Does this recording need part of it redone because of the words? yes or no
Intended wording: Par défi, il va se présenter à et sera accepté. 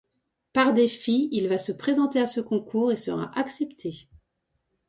yes